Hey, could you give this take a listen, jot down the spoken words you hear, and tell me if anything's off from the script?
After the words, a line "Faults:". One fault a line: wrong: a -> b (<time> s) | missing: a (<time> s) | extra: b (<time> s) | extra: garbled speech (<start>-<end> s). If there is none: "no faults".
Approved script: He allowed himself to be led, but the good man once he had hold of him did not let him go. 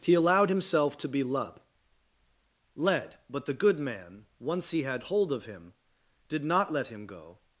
He allowed himself to be led led, but the good man once he had hold of him did not let him go.
Faults:
extra: led (2.7 s)